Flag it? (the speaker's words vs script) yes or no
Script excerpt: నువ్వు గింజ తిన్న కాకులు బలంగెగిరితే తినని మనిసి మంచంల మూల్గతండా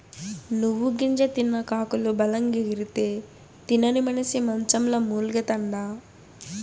no